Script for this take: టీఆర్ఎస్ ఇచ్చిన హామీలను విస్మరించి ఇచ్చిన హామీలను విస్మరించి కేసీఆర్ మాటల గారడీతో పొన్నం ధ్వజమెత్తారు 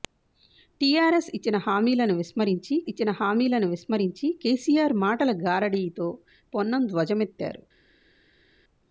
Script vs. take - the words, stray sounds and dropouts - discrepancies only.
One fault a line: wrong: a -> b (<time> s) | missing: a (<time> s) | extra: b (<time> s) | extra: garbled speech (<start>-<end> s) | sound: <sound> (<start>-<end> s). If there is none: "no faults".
no faults